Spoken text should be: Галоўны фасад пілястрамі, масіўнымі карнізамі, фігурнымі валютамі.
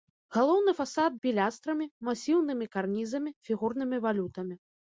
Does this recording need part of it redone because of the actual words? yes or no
no